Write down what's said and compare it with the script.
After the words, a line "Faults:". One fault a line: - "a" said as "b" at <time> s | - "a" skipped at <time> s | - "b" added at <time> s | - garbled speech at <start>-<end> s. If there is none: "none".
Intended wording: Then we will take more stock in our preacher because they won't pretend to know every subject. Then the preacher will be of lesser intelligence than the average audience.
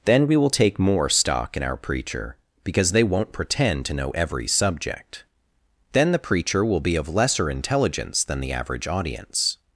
Then we will take more stock in our preacher because they won't pretend to know every subject. Then the preacher will be of lesser intelligence than the average audience.
Faults:
none